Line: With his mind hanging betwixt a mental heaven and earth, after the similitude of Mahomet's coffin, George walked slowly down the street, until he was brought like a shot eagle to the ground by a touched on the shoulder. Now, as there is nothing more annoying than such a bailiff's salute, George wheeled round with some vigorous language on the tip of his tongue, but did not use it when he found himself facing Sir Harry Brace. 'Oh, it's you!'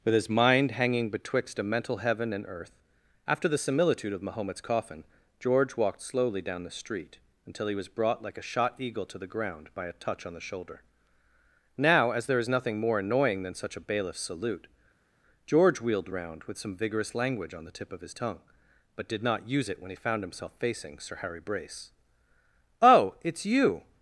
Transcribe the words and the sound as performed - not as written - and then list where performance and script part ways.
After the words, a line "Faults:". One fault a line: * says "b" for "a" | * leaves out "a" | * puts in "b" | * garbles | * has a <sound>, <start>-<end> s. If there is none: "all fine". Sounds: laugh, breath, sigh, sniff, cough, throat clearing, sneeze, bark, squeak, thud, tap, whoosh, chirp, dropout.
With his mind hanging betwixt a mental heaven and earth, after the similitude of Mahomet's coffin, George walked slowly down the street, until he was brought like a shot eagle to the ground by a touch on the shoulder. Now, as there is nothing more annoying than such a bailiff's salute, George wheeled round with some vigorous language on the tip of his tongue, but did not use it when he found himself facing Sir Harry Brace. 'Oh, it's you!'
Faults:
* says "touch" for "touched"